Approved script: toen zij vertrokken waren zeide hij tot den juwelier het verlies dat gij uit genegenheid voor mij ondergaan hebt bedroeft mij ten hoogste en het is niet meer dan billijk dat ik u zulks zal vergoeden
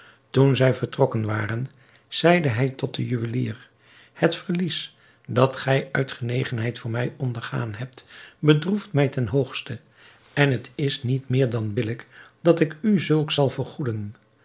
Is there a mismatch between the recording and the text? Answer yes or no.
no